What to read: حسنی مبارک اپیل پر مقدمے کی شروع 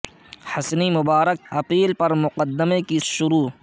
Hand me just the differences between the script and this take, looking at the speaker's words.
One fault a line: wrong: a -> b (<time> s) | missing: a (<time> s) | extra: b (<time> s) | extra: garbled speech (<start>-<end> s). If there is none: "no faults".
no faults